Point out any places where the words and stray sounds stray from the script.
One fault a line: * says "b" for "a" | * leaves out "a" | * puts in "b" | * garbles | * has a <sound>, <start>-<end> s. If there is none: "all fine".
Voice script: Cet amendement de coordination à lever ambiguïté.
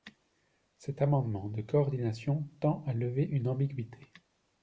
* puts in "tend"
* puts in "une"